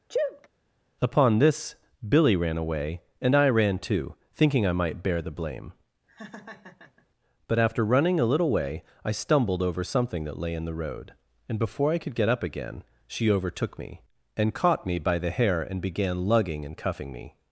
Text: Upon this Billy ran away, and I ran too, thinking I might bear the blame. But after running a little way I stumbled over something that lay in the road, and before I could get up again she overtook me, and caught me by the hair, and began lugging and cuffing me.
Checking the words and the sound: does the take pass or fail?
fail